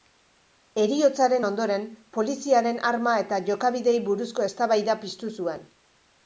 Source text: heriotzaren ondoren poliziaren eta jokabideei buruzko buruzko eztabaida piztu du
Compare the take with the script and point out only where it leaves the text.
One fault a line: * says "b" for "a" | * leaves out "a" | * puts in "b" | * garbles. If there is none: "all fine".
* puts in "arma"
* leaves out "buruzko"
* says "zuen" for "du"